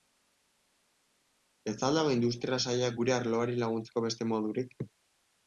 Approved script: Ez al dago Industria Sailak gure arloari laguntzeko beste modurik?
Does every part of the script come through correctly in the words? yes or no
yes